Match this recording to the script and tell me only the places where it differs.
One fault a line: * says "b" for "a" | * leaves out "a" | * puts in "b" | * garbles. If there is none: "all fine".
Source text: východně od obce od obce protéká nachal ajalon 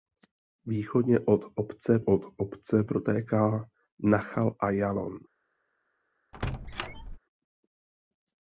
all fine